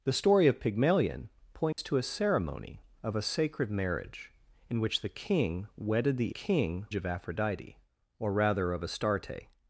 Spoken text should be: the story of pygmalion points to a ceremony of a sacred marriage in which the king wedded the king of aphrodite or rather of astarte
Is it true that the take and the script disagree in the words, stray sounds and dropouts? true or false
true